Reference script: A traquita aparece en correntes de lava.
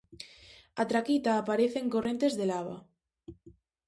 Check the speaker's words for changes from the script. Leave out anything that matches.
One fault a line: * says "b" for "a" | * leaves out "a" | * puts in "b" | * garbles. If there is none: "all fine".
all fine